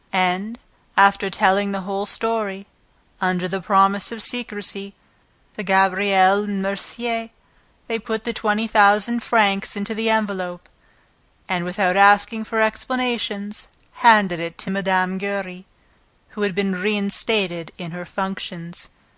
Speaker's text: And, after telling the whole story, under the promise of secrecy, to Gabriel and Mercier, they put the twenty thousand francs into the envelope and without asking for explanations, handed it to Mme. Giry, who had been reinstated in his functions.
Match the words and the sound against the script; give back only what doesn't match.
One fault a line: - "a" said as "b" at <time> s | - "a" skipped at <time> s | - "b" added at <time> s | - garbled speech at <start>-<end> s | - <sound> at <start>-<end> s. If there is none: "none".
- "his" said as "her" at 17.9 s